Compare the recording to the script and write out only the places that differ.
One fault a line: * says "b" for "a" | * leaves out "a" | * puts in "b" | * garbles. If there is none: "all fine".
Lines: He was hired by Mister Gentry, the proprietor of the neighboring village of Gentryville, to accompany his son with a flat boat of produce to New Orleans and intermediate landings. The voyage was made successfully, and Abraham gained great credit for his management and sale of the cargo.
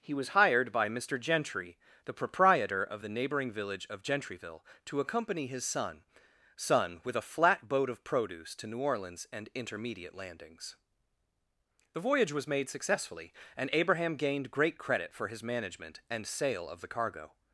* puts in "son"